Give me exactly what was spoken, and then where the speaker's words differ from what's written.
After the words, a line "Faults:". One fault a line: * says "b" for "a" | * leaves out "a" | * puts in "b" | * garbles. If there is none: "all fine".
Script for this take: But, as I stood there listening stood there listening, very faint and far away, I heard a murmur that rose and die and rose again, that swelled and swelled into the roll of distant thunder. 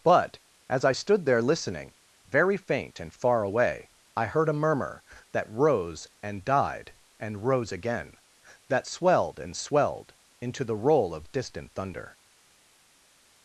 But, as I stood there listening, very faint and far away, I heard a murmur that rose and died and rose again, that swelled and swelled into the roll of distant thunder.
Faults:
* leaves out "stood there listening"
* says "died" for "die"